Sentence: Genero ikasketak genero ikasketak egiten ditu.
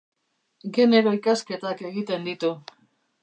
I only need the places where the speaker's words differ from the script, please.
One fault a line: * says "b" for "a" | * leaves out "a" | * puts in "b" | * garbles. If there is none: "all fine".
* leaves out "genero ikasketak"